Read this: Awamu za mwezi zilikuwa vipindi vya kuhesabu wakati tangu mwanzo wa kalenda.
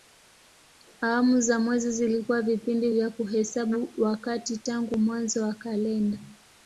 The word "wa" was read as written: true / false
true